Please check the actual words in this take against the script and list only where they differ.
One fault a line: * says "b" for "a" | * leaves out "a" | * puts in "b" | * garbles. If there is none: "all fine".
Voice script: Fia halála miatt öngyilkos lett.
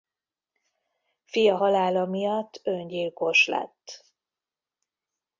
all fine